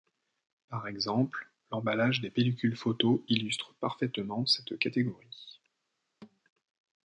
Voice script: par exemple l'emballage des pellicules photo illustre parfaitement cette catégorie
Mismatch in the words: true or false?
false